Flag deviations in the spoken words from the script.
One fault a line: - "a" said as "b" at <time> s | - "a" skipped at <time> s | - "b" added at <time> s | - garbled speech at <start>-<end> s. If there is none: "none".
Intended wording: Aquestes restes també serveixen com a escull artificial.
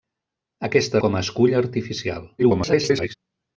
- "restes també serveixen" skipped at 1.0 s
- garbled speech at 2.4-3.1 s